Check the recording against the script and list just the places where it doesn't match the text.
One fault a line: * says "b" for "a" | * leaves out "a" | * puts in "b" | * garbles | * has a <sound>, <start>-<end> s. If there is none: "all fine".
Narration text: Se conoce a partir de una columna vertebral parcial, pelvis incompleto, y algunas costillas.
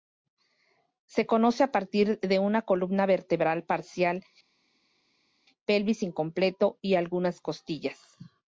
all fine